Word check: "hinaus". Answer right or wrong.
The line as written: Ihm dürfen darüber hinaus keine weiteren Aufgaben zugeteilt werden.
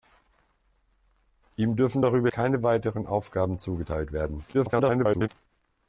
wrong